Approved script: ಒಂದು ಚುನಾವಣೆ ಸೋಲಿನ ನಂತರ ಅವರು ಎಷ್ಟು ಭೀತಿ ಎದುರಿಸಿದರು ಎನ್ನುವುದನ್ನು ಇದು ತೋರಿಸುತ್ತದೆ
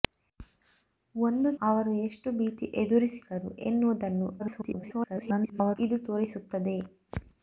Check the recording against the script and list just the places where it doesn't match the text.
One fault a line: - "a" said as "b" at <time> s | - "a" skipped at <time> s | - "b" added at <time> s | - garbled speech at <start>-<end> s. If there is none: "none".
- "ಚುನಾವಣೆ ಸೋಲಿನ ನಂತರ" skipped at 1.5 s
- garbled speech at 4.4-5.8 s